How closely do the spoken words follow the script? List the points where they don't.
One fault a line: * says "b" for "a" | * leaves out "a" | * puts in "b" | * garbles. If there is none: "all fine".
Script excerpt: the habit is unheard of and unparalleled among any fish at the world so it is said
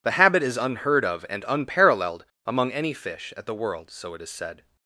all fine